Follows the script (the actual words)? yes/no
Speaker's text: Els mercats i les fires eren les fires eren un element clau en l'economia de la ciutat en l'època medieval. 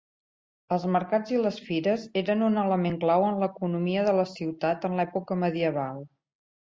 no